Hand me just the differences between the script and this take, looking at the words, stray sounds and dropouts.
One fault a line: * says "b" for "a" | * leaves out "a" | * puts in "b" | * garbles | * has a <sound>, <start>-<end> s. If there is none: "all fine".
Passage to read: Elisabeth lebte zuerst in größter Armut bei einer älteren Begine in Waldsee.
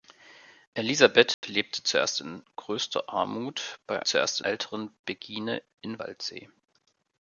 * has a dropout, 1.3-1.4 s
* says "zuerst" for "einer"